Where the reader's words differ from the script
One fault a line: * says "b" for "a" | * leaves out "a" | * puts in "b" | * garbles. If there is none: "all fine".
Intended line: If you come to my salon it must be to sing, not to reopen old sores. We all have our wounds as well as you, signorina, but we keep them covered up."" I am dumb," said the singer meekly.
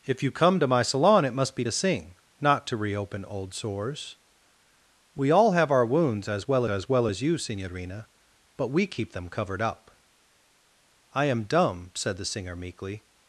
* puts in "well as"